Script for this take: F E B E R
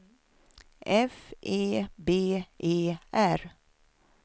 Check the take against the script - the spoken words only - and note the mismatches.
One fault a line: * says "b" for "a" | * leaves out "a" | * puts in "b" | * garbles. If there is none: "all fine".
all fine